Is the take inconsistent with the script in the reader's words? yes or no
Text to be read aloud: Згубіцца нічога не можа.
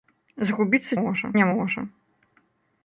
yes